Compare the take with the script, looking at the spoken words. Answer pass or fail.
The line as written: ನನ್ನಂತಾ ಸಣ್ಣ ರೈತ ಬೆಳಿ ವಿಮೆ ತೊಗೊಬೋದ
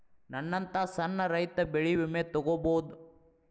pass